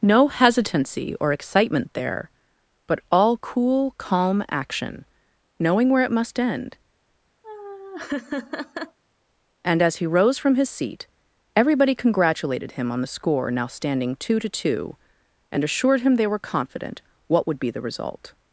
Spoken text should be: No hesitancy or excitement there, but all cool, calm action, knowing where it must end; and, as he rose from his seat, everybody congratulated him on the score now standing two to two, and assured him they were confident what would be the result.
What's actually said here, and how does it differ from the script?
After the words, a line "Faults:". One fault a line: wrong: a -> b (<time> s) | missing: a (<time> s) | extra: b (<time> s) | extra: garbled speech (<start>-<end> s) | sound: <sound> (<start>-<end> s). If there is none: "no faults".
No hesitancy or excitement there, but all cool, calm action, knowing where it must end; and, as he rose from his seat, everybody congratulated him on the score now standing two to two, and assured him they were confident what would be the result.
Faults:
sound: laugh (7.4-9.0 s)